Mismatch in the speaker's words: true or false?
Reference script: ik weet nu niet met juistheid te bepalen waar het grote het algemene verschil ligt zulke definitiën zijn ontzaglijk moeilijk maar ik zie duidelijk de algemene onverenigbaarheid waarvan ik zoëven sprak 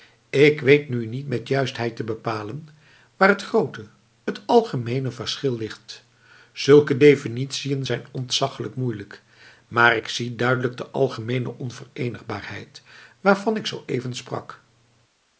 false